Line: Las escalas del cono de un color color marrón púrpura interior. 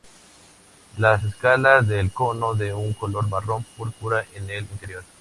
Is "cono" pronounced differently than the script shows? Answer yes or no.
no